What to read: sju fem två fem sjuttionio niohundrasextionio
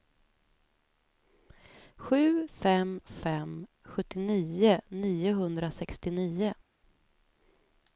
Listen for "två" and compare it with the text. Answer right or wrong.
wrong